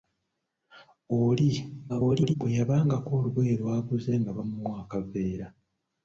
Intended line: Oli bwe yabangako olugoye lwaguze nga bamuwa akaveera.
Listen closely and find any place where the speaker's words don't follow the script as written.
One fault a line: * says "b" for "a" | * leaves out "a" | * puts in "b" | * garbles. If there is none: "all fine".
* garbles